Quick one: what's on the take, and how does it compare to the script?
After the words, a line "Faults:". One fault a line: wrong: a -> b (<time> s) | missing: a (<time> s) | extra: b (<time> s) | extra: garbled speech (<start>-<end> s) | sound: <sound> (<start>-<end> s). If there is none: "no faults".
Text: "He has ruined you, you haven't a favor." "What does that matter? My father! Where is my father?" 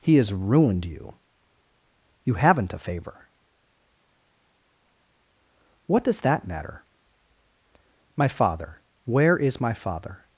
"He has ruined you, you haven't a favor." "What does that matter? My father! Where is my father?"
Faults:
no faults